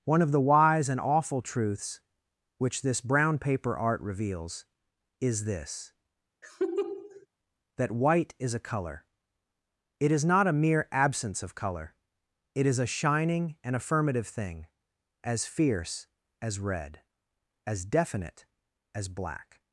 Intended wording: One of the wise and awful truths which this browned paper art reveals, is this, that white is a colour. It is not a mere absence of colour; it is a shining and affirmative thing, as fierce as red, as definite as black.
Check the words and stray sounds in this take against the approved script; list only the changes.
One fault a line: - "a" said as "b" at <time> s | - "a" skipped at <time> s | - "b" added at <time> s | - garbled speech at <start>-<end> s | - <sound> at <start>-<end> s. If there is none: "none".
- "browned" said as "brown" at 3.0 s
- laugh at 6.4-7.3 s